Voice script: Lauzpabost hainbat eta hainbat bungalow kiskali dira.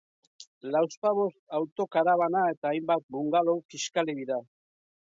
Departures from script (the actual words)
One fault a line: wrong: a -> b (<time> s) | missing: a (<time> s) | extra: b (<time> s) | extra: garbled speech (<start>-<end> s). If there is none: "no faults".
wrong: hainbat -> autokarabana (1.6 s)